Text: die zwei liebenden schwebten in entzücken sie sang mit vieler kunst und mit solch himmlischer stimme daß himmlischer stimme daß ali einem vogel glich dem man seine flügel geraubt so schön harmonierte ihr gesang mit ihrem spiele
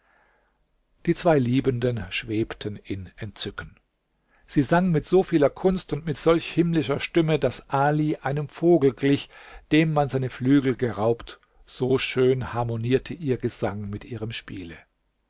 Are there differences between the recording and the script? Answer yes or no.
yes